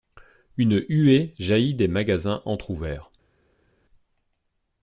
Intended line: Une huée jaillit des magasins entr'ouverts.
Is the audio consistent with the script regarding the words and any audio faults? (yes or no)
yes